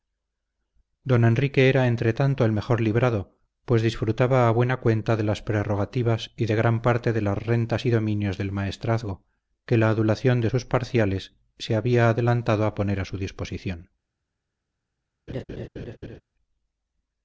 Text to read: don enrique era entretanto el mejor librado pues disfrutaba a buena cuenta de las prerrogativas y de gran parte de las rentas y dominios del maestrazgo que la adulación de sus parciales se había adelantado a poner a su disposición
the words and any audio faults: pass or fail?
fail